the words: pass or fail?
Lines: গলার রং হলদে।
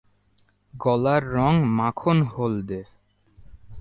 fail